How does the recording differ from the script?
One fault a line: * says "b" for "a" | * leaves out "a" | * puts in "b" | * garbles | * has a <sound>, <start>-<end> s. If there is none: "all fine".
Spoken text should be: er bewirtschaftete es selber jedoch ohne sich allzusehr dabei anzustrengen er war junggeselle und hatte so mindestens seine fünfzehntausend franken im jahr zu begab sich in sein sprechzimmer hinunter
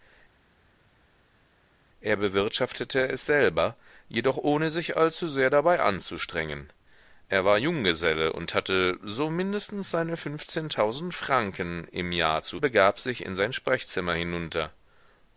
all fine